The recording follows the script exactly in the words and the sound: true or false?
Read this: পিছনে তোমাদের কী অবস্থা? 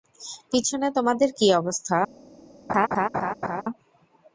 false